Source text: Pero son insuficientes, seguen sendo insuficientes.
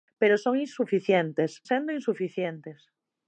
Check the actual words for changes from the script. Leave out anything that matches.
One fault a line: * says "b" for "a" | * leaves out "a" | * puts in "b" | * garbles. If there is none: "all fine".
* leaves out "seguen"